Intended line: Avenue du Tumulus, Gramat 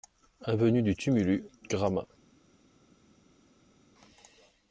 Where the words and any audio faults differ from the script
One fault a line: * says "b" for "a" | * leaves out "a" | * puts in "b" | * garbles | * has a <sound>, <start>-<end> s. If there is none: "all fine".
all fine